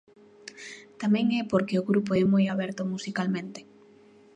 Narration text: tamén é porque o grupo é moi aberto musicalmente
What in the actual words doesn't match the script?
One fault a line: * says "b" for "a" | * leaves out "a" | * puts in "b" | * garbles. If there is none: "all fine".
all fine